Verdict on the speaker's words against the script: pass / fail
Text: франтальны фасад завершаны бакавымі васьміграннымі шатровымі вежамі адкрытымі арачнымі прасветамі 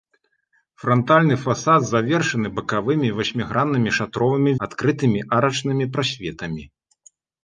fail